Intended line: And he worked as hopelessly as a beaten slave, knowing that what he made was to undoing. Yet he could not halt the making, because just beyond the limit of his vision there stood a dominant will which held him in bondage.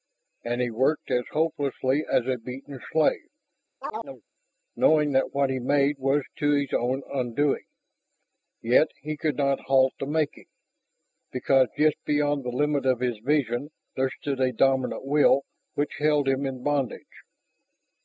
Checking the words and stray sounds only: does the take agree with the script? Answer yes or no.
no